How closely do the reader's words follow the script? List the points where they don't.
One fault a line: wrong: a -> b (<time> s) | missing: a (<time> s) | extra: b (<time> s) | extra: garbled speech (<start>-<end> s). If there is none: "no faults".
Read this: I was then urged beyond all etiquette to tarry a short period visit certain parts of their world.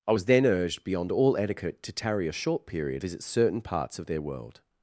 no faults